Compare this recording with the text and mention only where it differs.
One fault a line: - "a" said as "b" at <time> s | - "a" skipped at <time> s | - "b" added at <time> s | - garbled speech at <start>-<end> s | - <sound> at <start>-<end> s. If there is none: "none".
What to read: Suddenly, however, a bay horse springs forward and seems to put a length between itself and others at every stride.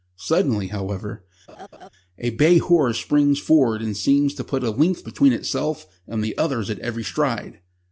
- laugh at 1.5-1.9 s
- "the" added at 6.2 s